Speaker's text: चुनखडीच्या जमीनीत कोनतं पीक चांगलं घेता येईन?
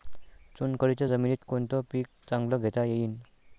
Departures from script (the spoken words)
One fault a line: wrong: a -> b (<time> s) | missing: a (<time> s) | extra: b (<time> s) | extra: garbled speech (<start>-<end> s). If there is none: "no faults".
no faults